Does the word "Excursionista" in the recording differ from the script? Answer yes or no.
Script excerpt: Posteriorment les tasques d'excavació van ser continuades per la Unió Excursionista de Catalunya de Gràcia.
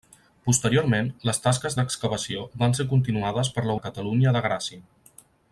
yes